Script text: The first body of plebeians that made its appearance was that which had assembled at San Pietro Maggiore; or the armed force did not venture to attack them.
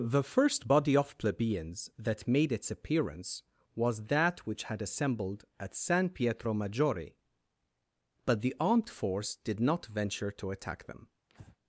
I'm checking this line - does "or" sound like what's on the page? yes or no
no